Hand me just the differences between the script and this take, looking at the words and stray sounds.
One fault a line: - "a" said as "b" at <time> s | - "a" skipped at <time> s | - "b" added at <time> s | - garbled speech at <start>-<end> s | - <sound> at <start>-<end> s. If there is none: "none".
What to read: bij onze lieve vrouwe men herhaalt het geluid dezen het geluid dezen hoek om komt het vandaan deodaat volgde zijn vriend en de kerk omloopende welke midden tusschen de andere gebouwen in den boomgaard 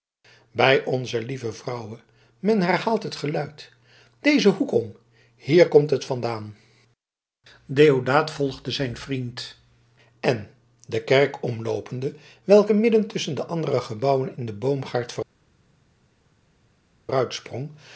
- "het geluid dezen" skipped at 4.5 s
- "hier" added at 5.3 s